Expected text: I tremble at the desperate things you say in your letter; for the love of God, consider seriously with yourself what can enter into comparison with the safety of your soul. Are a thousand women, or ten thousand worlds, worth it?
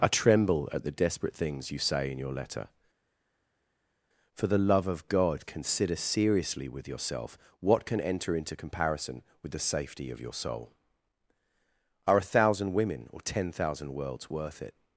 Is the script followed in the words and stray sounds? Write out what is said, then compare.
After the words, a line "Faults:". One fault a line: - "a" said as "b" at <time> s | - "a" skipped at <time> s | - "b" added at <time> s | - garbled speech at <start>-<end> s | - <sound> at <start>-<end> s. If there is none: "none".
I tremble at the desperate things you say in your letter; for the love of God, consider seriously with yourself what can enter into comparison with the safety of your soul. Are a thousand women, or ten thousand worlds, worth it?
Faults:
none